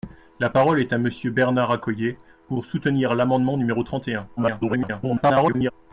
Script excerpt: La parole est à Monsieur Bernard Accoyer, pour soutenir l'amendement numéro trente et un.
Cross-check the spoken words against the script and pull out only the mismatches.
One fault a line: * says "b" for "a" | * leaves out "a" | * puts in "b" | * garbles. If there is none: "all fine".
* garbles